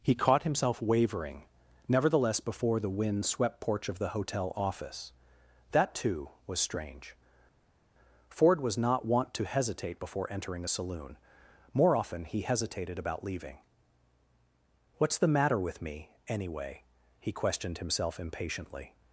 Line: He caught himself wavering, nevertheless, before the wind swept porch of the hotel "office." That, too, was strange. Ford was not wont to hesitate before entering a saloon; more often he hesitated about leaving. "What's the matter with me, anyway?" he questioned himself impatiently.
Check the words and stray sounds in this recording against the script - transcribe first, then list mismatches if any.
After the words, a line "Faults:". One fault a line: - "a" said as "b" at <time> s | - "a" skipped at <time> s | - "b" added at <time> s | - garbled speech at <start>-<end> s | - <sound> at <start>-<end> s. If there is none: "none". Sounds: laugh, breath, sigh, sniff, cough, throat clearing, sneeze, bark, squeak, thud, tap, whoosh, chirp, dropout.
He caught himself wavering, nevertheless, before the wind swept porch of the hotel "office." That, too, was strange. Ford was not wont to hesitate before entering a saloon; more often he hesitated about leaving. "What's the matter with me, anyway?" he questioned himself impatiently.
Faults:
none